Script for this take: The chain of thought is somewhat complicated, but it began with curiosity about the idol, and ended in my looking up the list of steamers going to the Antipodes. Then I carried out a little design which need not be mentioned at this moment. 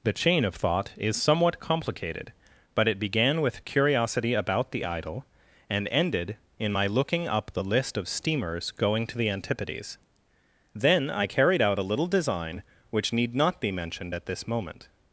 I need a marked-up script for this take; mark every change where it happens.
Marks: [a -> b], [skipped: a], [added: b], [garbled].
The chain of thought is somewhat complicated, but it began with curiosity about the idol, and ended in my looking up the list of steamers going to the Antipodes. Then I carried out a little design which need not be mentioned at this moment.